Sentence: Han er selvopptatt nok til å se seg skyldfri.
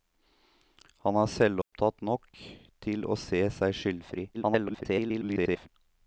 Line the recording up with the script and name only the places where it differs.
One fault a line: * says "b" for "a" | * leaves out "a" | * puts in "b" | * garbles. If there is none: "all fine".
* garbles